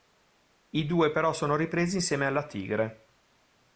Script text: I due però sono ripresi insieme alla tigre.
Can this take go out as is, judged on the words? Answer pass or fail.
pass